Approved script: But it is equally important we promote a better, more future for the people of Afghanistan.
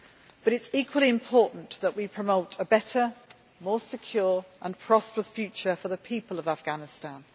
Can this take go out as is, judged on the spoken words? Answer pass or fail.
fail